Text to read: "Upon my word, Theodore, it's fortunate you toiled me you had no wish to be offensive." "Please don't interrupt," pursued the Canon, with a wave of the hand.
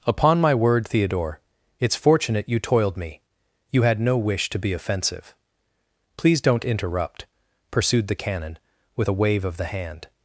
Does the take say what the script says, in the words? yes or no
yes